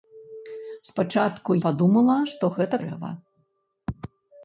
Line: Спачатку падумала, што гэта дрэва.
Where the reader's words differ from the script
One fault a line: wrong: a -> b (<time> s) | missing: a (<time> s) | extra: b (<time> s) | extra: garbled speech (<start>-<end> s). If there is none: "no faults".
no faults